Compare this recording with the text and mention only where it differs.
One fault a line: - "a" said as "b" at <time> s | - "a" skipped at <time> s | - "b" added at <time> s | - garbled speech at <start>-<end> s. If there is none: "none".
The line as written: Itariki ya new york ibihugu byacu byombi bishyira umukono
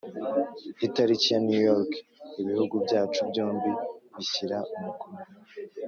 none